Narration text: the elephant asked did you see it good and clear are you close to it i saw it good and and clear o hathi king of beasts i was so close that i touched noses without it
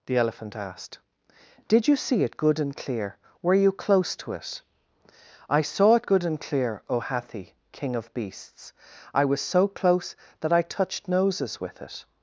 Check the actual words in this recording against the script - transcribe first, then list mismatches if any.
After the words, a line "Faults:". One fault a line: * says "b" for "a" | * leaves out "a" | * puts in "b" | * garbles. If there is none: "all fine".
the elephant asked did you see it good and clear were you close to it i saw it good and clear o hathi king of beasts i was so close that i touched noses with it
Faults:
* says "were" for "are"
* leaves out "and"
* says "with" for "without"